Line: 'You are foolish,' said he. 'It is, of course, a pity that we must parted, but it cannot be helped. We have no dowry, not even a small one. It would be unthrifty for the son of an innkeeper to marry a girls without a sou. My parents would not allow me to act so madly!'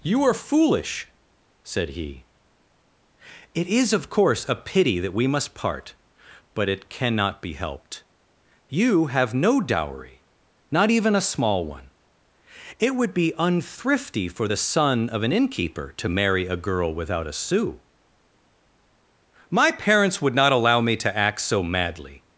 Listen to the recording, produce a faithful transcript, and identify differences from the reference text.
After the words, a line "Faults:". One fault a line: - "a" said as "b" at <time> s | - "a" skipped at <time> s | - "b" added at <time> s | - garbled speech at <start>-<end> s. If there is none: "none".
'You are foolish,' said he. 'It is, of course, a pity that we must part, but it cannot be helped. You have no dowry, not even a small one. It would be unthrifty for the son of an innkeeper to marry a girl without a sou. My parents would not allow me to act so madly!'
Faults:
- "parted" said as "part" at 5.5 s
- "We" said as "You" at 8.7 s
- "girls" said as "girl" at 16.6 s